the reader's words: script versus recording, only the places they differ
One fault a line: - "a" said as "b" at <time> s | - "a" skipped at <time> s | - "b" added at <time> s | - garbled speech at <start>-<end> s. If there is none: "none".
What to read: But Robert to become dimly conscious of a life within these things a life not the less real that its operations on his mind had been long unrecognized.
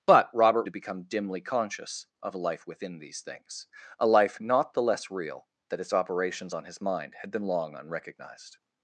none